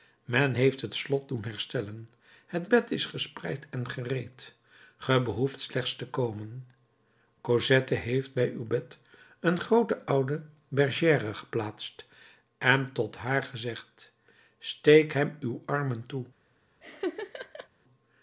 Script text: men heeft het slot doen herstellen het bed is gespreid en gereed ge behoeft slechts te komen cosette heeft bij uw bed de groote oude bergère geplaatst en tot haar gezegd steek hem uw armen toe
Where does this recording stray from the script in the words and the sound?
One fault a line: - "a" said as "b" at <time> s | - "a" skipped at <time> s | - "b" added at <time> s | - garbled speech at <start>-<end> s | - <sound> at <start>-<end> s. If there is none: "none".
- "de" said as "een" at 9.4 s
- laugh at 16.8-17.7 s